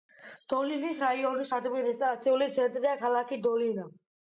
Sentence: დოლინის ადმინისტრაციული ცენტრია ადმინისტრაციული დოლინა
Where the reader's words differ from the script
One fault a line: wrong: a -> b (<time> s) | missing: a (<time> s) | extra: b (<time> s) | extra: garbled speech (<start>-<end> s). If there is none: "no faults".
extra: რაიონის (1.0 s)
wrong: ადმინისტრაციული -> ქალაქი (3.1 s)